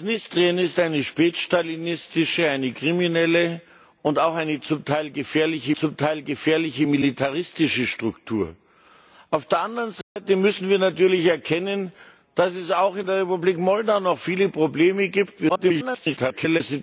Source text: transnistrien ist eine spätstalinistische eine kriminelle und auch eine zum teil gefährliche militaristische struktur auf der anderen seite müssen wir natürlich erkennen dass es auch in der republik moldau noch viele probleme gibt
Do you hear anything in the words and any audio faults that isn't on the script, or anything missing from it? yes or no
yes